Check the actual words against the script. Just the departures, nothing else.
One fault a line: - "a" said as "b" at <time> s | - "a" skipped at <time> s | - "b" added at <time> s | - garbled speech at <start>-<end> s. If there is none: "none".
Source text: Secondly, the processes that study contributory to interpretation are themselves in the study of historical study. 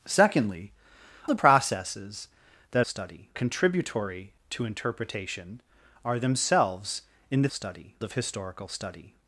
none